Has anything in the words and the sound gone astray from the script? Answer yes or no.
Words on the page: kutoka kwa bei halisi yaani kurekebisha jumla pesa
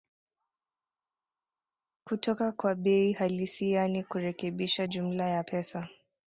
yes